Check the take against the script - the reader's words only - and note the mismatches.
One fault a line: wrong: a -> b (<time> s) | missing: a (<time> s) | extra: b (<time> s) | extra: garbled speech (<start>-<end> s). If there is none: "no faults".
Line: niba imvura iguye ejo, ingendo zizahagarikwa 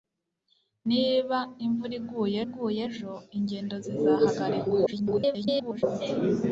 extra: iguye (2.4 s)
extra: garbled speech (4.9-5.8 s)